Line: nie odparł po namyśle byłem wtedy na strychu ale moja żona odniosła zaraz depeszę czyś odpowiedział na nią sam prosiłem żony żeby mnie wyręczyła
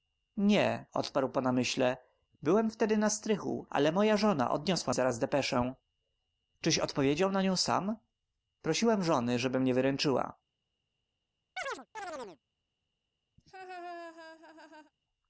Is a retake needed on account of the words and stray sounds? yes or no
yes